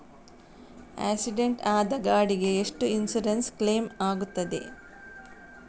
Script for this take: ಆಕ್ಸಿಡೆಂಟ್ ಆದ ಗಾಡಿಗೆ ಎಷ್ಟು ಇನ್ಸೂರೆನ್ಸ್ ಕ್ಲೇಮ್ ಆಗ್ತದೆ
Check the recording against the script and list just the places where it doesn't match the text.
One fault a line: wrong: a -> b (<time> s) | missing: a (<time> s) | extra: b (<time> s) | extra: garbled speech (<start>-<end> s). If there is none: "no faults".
no faults